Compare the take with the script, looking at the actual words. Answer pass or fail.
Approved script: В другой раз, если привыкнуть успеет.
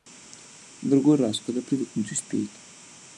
fail